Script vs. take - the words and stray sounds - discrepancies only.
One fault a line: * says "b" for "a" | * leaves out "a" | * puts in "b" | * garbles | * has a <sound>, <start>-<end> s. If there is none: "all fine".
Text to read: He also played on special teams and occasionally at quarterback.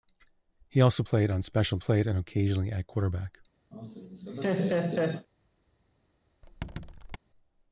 * says "played" for "teams"
* has a laugh, 3.7-5.3 s
* has a squeak, 6.4-7.2 s